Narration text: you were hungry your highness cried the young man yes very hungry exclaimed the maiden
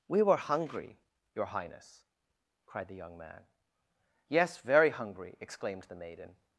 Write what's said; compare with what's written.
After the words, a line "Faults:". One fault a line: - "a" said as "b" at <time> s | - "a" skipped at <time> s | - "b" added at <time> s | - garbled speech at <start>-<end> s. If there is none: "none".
we were hungry your highness cried the young man yes very hungry exclaimed the maiden
Faults:
- "you" said as "we" at 0.1 s